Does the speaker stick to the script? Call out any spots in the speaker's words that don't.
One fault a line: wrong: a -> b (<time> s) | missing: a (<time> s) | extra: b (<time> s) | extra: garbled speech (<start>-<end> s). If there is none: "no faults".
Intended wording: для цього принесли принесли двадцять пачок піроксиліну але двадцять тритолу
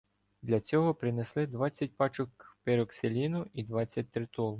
missing: принесли (1.5 s)
wrong: але -> і (3.5 s)